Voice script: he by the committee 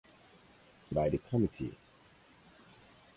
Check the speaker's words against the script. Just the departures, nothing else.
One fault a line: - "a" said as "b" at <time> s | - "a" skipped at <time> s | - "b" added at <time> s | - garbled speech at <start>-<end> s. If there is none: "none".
none